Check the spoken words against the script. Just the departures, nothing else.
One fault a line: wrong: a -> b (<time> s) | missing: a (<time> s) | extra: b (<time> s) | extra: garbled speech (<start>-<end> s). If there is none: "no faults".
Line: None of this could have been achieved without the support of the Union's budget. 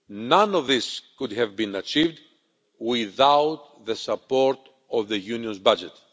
no faults